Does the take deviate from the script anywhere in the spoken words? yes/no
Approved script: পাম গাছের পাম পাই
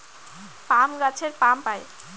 no